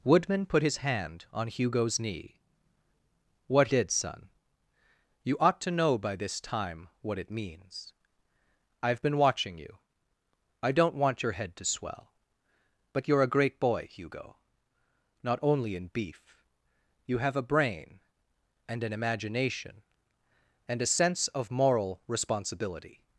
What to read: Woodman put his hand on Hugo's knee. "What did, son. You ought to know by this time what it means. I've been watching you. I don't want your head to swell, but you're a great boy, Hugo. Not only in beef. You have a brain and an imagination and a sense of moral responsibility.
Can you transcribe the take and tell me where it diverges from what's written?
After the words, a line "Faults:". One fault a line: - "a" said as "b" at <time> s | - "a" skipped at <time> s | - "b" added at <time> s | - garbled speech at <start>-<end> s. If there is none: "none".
Woodman put his hand on Hugo's knee. "What did, son. You ought to know by this time what it means. I've been watching you. I don't want your head to swell, but you're a great boy, Hugo. Not only in beef. You have a brain and an imagination and a sense of moral responsibility.
Faults:
none